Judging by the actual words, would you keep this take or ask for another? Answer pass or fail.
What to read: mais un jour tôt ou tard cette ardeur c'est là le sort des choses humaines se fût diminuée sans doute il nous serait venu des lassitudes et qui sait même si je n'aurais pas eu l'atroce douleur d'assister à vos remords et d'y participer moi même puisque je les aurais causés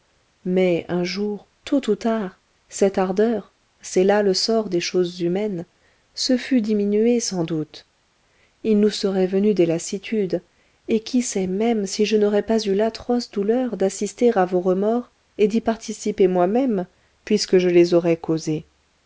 pass